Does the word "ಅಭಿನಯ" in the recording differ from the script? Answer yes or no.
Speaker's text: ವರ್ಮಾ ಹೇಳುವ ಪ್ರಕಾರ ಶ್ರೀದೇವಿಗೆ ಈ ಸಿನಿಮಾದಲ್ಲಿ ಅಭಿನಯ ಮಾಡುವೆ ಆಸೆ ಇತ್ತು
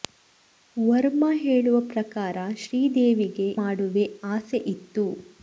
yes